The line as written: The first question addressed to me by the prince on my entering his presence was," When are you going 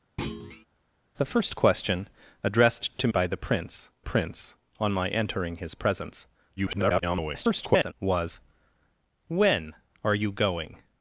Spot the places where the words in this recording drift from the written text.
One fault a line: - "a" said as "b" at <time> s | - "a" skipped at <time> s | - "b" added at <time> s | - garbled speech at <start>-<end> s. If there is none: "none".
- "me" skipped at 3.1 s
- "prince" added at 4.0 s
- garbled speech at 6.6-7.9 s